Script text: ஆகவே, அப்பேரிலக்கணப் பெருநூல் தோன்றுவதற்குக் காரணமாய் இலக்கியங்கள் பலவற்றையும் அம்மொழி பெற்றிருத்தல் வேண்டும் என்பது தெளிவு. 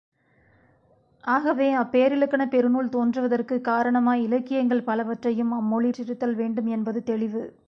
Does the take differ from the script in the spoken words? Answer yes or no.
no